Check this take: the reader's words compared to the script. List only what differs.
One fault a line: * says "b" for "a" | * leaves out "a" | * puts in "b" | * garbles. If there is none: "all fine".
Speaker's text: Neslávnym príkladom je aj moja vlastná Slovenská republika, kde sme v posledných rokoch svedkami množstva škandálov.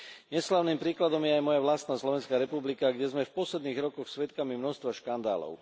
all fine